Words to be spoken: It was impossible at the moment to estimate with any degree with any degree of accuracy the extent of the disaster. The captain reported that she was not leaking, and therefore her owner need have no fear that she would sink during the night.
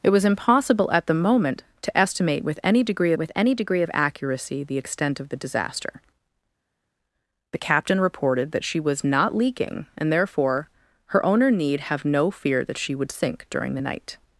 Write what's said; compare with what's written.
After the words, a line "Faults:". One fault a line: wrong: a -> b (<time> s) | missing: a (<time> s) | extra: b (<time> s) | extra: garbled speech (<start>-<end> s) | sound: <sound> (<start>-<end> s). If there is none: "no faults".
It was impossible at the moment to estimate with any degree with any degree of accuracy the extent of the disaster. The captain reported that she was not leaking, and therefore her owner need have no fear that she would sink during the night.
Faults:
no faults